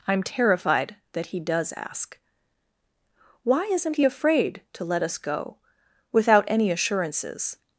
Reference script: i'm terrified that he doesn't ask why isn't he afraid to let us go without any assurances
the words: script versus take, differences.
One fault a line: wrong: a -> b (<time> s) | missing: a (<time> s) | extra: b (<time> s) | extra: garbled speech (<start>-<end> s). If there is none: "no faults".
wrong: doesn't -> does (1.4 s)